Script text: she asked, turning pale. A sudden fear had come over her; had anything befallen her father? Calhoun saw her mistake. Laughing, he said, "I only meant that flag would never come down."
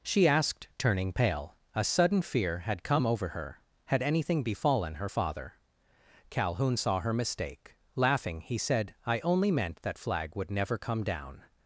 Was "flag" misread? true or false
false